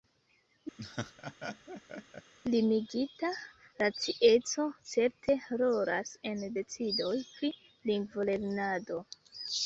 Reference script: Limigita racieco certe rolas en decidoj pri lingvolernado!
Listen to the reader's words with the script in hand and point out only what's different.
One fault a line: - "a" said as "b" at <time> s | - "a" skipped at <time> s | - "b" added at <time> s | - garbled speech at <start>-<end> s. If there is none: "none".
none